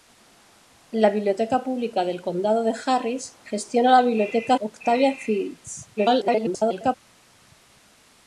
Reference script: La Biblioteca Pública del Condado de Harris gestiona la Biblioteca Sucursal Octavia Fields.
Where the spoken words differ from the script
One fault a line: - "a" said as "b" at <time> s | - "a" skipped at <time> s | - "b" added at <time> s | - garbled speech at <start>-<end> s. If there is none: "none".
- "Sucursal" skipped at 4.6 s
- garbled speech at 6.0-7.0 s